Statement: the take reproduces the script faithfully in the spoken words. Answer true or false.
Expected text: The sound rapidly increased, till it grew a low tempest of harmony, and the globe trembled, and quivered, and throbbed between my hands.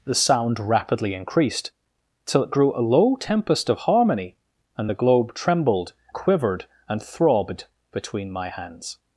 false